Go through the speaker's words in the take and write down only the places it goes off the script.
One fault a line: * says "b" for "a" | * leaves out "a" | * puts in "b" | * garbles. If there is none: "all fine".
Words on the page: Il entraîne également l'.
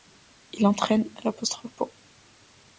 * leaves out "également"